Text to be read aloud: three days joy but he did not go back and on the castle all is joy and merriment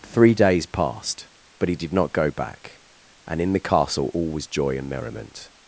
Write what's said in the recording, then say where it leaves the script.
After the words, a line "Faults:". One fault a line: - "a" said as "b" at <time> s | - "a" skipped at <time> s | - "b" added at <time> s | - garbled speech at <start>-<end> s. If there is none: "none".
three days passed but he did not go back and in the castle all was joy and merriment
Faults:
- "joy" said as "passed" at 0.7 s
- "on" said as "in" at 3.4 s
- "is" said as "was" at 4.3 s